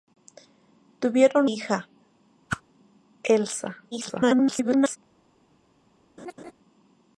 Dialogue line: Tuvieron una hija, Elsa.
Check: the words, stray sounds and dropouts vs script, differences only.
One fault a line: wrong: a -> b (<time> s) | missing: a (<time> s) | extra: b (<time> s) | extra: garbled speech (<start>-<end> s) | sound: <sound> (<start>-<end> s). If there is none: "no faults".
missing: una (1.5 s)
sound: whoosh (2.5-2.6 s)
extra: garbled speech (3.9-5.0 s)
sound: laugh (6.2-6.5 s)